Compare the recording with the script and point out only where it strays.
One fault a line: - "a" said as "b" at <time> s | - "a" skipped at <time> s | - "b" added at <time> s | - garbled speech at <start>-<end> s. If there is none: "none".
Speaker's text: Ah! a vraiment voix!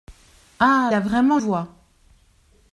none